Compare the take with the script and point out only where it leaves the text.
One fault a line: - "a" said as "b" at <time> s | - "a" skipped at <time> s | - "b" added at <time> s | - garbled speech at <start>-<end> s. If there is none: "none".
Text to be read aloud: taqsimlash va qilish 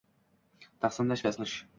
none